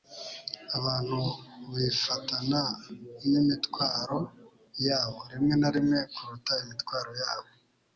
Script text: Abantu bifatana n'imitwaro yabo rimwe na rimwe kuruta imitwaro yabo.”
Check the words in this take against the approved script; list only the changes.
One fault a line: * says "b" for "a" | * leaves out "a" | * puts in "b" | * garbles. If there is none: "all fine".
all fine